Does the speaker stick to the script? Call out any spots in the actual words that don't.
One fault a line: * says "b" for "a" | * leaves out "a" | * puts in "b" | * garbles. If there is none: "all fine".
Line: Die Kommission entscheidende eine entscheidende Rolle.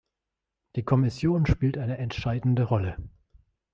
* says "spielt" for "entscheidende"